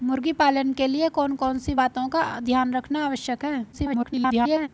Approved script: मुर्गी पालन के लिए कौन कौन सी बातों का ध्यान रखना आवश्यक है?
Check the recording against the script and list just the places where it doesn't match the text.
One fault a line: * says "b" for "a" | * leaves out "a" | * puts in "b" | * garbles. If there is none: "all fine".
* garbles